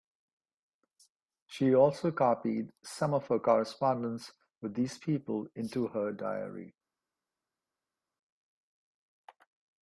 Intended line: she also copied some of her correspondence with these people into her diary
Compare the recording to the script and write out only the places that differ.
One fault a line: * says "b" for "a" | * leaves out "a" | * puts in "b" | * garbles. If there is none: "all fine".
all fine